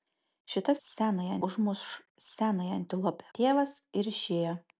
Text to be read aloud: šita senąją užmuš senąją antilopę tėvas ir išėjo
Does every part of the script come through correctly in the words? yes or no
yes